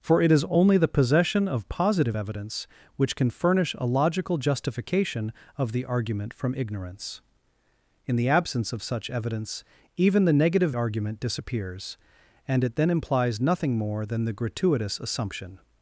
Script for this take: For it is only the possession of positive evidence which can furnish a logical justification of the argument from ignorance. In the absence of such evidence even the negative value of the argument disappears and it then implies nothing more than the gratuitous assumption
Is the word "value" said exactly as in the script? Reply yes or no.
no